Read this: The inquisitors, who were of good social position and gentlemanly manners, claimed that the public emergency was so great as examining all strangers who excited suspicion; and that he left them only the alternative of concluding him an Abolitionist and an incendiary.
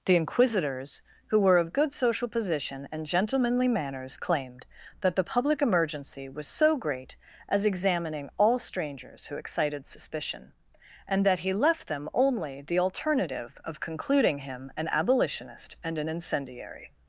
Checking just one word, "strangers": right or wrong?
right